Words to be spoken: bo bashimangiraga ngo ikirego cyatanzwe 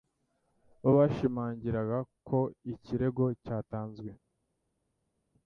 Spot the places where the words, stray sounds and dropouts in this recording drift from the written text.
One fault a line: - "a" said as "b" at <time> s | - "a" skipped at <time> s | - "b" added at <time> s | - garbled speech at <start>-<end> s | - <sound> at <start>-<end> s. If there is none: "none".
- "ngo" said as "ko" at 2.3 s